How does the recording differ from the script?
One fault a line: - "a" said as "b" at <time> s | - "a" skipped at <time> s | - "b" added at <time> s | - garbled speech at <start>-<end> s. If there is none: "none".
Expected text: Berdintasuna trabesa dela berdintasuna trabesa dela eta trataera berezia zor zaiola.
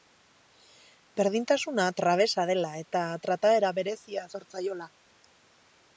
- "berdintasuna trabesa dela" skipped at 2.7 s